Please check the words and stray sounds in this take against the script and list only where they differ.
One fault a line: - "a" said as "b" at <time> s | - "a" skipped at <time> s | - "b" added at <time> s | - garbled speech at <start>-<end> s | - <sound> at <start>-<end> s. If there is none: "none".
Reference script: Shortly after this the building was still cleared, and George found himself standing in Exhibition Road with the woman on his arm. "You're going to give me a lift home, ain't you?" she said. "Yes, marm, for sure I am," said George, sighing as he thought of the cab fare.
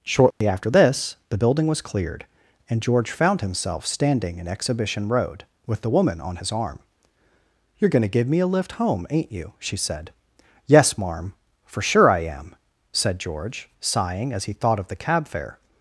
- dropout at 0.3-0.4 s
- "still" skipped at 1.8 s